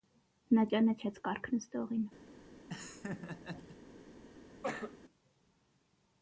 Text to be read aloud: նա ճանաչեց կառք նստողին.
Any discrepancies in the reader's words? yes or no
no